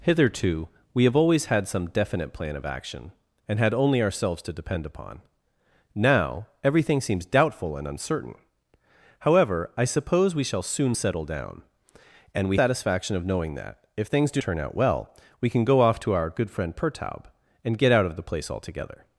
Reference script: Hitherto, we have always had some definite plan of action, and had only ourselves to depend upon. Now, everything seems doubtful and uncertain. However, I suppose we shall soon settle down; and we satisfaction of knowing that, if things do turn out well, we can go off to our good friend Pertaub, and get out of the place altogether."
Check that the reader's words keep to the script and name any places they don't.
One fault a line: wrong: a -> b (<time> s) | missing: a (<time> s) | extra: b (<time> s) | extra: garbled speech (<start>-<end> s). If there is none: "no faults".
no faults